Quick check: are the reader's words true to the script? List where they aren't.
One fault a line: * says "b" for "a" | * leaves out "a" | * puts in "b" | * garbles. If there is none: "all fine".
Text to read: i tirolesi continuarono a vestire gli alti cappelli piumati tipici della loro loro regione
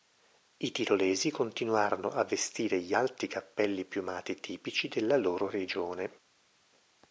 * leaves out "loro"